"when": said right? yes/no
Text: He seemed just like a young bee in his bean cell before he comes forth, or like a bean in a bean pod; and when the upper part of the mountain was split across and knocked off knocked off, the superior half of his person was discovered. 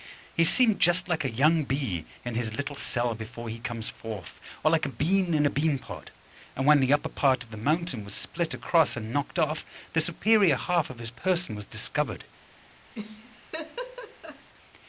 yes